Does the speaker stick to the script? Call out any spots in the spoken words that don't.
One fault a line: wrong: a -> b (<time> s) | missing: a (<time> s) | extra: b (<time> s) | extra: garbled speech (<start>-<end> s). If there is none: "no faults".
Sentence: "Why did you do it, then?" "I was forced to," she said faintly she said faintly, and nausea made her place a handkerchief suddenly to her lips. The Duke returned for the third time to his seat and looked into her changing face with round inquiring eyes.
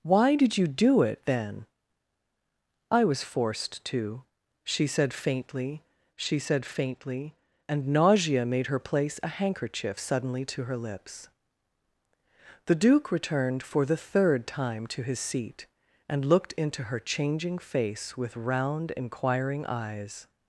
no faults